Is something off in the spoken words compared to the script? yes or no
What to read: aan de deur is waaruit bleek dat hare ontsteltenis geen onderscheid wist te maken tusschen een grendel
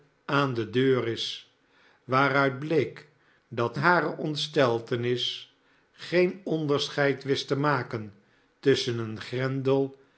no